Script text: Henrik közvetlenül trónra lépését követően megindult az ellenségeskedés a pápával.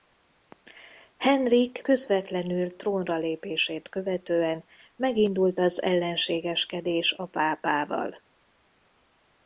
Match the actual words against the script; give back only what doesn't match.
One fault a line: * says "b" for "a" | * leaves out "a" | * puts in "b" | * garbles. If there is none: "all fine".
all fine